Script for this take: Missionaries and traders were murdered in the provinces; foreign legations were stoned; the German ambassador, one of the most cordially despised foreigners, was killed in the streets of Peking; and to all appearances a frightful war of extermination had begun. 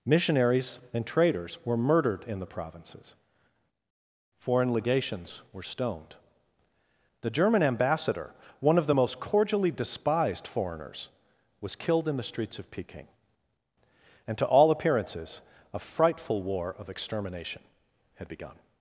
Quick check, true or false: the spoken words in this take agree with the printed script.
true